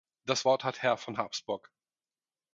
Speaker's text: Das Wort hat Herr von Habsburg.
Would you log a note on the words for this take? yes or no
no